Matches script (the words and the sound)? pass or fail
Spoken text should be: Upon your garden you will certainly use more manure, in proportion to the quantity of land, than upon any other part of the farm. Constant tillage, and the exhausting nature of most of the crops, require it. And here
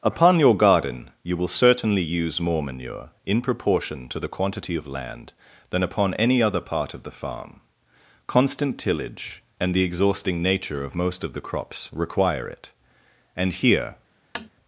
fail